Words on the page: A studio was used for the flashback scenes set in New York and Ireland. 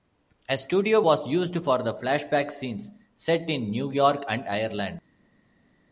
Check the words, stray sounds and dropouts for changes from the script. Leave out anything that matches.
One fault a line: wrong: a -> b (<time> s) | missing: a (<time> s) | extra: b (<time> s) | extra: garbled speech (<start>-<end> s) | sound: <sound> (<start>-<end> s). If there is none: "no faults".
no faults